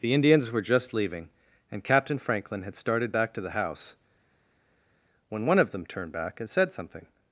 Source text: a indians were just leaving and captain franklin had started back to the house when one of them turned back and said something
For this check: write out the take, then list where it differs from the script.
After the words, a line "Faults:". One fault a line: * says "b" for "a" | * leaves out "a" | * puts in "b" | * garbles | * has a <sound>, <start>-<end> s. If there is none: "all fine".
the indians were just leaving and captain franklin had started back to the house when one of them turned back and said something
Faults:
* says "the" for "a"